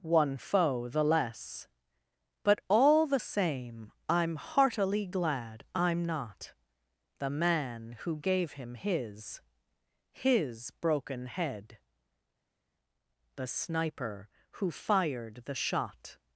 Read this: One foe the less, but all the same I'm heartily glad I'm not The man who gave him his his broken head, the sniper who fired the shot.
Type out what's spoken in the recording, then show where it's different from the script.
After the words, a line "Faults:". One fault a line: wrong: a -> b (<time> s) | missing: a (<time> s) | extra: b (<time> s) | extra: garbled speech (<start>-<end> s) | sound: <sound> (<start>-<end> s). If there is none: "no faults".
One foe the less, but all the same I'm heartily glad I'm not The man who gave him his his broken head, the sniper who fired the shot.
Faults:
no faults